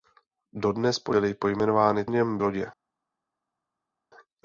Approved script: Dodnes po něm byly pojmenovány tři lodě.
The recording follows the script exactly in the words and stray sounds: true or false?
false